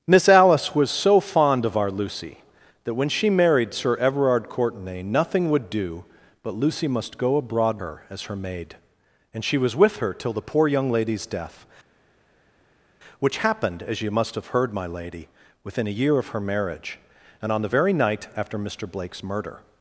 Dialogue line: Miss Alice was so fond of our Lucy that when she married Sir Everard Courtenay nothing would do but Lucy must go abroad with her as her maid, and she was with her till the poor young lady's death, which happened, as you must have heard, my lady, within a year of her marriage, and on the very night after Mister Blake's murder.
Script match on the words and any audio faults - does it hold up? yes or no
no